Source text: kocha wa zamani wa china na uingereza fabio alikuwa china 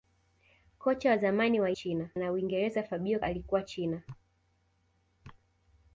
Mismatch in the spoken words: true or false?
false